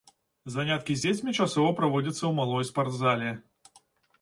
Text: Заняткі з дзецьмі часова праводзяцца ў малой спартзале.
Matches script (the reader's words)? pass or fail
pass